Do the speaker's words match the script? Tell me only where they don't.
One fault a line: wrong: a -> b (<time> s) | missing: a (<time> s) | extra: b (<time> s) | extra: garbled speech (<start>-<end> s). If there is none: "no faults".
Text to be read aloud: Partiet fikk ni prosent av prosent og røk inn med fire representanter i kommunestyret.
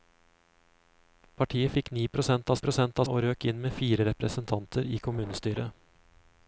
no faults